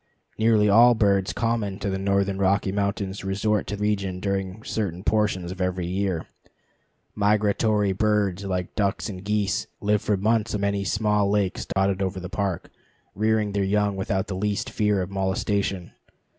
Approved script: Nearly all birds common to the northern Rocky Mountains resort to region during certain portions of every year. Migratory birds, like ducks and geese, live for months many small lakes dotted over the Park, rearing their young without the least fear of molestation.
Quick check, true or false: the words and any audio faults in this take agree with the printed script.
false